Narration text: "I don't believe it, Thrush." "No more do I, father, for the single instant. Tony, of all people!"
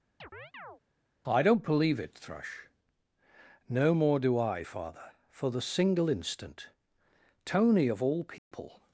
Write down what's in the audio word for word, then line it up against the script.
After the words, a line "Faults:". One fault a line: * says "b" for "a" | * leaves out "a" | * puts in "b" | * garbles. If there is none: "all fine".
"I don't believe it, Thrush." "No more do I, father, for the single instant. Tony, of all people!"
Faults:
all fine